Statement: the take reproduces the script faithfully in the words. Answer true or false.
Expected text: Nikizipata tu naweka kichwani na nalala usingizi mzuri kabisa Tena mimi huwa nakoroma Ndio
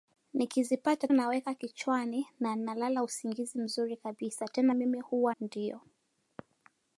false